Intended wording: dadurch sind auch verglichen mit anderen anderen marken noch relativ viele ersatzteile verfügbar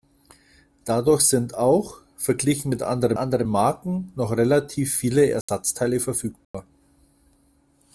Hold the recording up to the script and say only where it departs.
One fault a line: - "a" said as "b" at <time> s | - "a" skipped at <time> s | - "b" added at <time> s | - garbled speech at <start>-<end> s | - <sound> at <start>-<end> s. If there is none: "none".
- dropout at 5.4-5.5 s
- dropout at 6.4-6.5 s